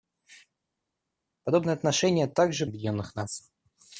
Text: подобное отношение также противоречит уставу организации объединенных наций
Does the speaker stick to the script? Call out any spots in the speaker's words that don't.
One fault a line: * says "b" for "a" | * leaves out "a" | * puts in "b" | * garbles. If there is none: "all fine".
* leaves out "противоречит уставу организации"